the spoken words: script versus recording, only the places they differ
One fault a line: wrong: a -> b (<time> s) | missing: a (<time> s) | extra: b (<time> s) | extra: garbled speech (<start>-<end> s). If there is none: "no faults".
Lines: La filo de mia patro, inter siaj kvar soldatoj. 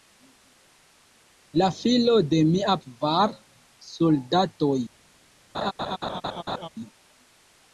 missing: patro inter siaj (2.8 s)